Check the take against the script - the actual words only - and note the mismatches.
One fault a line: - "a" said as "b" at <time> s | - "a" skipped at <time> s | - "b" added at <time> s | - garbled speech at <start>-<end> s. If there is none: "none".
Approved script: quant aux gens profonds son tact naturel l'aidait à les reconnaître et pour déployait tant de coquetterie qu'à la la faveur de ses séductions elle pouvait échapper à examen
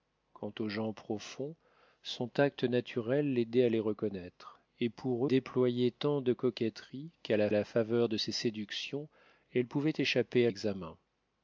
none